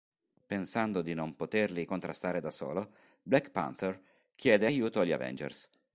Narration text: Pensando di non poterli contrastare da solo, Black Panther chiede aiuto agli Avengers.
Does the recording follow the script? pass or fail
pass